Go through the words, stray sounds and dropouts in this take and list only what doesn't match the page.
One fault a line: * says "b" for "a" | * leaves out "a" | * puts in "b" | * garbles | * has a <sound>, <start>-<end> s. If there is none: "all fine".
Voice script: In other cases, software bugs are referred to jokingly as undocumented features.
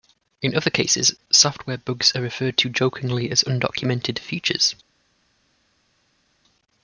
all fine